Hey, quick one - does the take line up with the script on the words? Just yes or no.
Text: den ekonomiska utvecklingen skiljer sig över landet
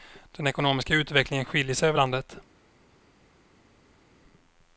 yes